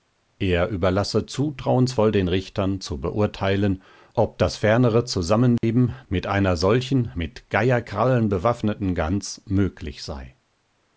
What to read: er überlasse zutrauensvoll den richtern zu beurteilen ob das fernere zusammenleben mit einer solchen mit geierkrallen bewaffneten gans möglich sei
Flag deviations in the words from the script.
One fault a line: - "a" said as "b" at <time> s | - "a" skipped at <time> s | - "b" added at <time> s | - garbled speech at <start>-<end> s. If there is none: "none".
none